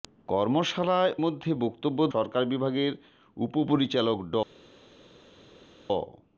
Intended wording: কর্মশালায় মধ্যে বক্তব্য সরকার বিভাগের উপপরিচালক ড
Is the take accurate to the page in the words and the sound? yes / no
yes